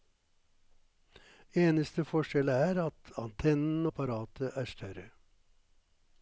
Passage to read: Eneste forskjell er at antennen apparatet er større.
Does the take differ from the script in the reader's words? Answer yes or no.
no